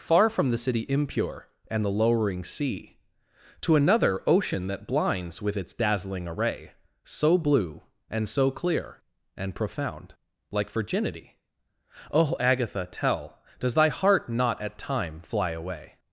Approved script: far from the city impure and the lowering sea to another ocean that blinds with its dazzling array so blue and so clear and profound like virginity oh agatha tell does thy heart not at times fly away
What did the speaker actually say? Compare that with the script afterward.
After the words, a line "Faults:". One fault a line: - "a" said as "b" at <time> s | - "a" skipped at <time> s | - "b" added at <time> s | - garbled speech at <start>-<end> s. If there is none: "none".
far from the city impure and the lowering sea to another ocean that blinds with its dazzling array so blue and so clear and profound like virginity oh agatha tell does thy heart not at time fly away
Faults:
- "times" said as "time" at 14.8 s